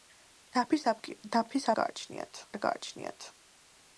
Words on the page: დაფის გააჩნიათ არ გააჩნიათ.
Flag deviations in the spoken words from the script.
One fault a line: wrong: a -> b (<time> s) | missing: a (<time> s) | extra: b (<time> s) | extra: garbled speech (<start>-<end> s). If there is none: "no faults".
no faults